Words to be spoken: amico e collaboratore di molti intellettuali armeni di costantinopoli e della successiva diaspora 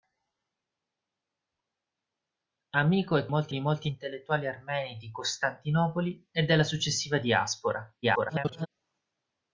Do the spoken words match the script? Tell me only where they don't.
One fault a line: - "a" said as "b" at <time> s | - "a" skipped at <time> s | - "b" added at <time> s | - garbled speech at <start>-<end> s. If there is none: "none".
- "collaboratore" said as "molti" at 3.3 s
- garbled speech at 8.0-8.7 s